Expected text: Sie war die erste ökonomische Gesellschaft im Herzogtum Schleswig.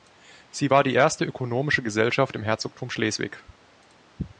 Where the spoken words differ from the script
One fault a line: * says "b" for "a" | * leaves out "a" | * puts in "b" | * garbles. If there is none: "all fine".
all fine